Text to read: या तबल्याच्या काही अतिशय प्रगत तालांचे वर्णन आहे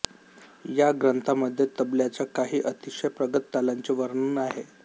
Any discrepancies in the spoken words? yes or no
yes